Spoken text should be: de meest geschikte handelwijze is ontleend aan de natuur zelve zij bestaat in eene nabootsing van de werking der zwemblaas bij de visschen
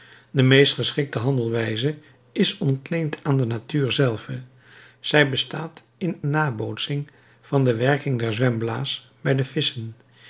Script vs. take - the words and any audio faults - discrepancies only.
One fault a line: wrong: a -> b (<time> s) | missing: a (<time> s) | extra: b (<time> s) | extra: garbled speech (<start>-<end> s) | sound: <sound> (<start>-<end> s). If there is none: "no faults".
missing: eene (6.2 s)